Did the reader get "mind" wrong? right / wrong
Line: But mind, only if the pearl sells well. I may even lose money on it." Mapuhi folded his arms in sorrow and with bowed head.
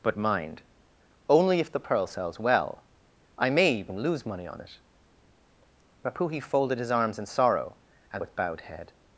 right